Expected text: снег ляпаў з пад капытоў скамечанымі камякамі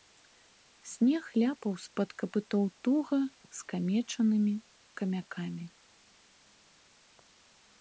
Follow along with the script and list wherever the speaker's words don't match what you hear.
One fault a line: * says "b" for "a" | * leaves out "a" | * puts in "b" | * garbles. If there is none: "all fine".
* puts in "туга"